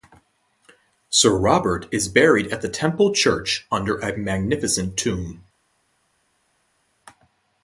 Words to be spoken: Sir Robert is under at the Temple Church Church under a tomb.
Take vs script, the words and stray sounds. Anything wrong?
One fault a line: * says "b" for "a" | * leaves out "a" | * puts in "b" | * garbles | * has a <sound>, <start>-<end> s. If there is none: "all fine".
* says "buried" for "under"
* leaves out "Church"
* puts in "magnificent"